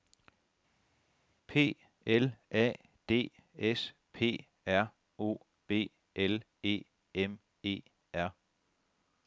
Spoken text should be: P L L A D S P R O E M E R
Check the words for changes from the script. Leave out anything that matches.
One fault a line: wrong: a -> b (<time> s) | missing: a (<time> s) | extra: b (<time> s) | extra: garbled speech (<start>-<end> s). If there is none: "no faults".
missing: L (2.3 s)
extra: B L (5.7 s)